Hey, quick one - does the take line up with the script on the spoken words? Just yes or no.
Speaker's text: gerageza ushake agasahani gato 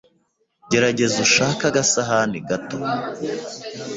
yes